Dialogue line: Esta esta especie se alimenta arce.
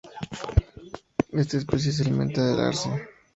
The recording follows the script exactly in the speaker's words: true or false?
false